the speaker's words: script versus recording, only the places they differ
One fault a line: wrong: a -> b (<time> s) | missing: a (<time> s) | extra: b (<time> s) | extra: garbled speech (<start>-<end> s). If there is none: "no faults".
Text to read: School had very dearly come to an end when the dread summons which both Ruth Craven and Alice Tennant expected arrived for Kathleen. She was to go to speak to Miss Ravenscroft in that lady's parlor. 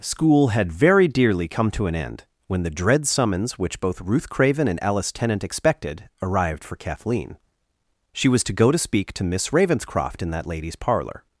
no faults